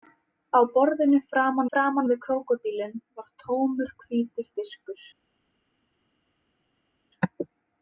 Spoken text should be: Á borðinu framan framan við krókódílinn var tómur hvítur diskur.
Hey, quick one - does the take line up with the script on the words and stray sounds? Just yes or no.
yes